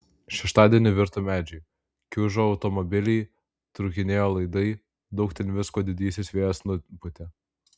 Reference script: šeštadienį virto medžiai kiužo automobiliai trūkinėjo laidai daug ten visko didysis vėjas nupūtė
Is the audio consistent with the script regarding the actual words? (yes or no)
yes